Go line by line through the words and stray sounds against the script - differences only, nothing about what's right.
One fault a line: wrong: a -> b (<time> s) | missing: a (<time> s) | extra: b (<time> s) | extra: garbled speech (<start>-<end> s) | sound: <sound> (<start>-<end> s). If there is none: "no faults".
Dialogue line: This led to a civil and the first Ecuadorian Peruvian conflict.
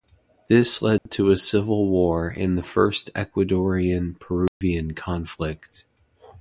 sound: dropout (1.0-1.1 s)
extra: war (1.9 s)
sound: dropout (4.5-4.6 s)